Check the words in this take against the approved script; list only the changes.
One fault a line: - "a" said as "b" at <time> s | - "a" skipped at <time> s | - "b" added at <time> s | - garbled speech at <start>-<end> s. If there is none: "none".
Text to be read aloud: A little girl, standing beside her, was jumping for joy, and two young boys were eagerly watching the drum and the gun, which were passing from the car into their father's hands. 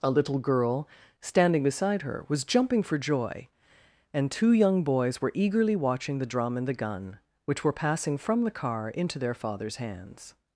none